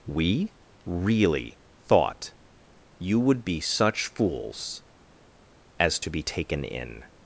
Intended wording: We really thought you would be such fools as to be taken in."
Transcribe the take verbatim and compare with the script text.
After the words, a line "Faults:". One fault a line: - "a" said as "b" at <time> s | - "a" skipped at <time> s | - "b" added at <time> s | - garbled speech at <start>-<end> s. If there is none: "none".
We really thought you would be such fools as to be taken in."
Faults:
none